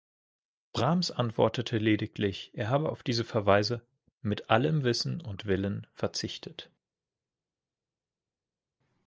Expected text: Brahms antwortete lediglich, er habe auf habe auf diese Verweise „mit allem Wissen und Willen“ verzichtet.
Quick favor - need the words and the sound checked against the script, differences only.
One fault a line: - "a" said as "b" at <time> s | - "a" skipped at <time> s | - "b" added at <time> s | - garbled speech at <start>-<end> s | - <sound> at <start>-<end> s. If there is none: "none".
- "habe auf" skipped at 3.0 s